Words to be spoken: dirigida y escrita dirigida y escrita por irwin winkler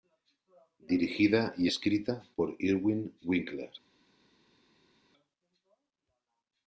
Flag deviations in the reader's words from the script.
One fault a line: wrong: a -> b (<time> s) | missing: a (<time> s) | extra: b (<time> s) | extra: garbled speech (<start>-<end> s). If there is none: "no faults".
missing: dirigida y escrita (2.2 s)